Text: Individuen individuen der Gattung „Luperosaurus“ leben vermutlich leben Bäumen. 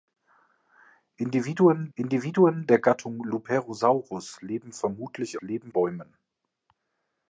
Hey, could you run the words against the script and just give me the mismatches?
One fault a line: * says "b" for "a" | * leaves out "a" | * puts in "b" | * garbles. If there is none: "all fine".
all fine